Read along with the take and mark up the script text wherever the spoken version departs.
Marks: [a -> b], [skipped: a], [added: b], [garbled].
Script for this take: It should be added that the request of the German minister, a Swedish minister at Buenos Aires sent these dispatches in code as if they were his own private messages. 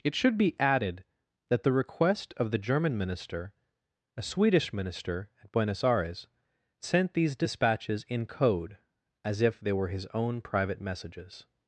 It should be added that the request of the German minister, a Swedish minister at Buenos Aires sent these dispatches in code as if they were his own private messages.